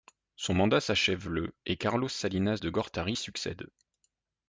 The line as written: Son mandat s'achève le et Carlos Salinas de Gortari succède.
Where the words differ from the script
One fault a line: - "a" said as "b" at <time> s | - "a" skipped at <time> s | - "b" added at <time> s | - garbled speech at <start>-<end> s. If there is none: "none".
none